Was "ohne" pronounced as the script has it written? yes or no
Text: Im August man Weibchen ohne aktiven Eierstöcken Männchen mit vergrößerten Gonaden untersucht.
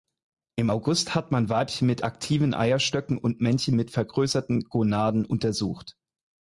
no